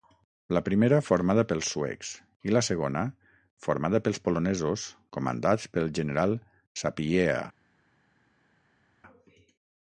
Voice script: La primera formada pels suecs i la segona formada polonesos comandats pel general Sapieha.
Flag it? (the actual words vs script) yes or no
yes